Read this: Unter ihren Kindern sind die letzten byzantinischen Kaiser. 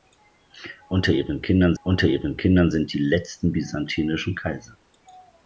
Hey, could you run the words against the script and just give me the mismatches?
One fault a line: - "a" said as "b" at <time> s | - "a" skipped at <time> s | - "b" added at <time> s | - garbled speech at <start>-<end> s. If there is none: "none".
- "unter ihren Kindern" added at 1.8 s